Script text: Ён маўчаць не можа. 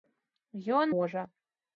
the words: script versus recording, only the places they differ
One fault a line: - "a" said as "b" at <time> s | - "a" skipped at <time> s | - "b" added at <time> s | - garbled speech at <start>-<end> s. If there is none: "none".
- "маўчаць не" skipped at 0.9 s